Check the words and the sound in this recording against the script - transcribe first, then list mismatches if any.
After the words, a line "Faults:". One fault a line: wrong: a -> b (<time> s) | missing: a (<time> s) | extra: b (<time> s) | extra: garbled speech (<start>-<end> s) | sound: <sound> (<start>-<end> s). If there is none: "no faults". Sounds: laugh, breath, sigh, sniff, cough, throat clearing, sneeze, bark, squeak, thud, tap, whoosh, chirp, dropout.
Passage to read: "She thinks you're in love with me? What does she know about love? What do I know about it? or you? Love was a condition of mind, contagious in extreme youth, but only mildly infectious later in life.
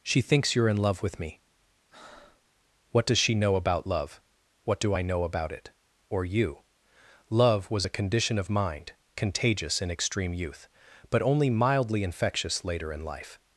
"She thinks you're in love with me? What does she know about love? What do I know about it? or you? Love was a condition of mind, contagious in extreme youth, but only mildly infectious later in life.
Faults:
sound: breath (1.9-2.5 s)